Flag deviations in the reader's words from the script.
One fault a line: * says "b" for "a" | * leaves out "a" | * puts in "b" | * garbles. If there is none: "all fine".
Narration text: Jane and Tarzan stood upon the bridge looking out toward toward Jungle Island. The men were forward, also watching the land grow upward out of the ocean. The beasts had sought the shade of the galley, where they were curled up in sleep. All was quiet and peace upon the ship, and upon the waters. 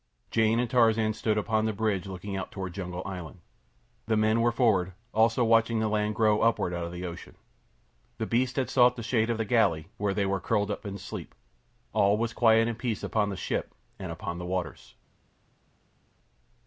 * leaves out "toward"